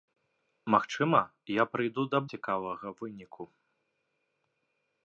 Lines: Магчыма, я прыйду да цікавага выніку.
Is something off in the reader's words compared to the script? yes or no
no